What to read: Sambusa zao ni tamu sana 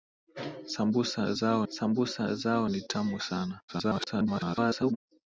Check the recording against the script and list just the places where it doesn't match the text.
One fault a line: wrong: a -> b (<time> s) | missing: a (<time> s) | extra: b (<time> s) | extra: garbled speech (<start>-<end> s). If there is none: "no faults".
extra: sambusa zao (1.7 s)
extra: garbled speech (3.7-5.0 s)